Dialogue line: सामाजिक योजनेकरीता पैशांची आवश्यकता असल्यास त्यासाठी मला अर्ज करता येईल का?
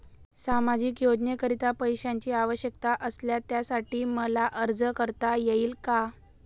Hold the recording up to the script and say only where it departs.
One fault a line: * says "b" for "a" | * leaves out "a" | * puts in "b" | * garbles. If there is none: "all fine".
all fine